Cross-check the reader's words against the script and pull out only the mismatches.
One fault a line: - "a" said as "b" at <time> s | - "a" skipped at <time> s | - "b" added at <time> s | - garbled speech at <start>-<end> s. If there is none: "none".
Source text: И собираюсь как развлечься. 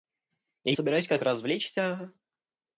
none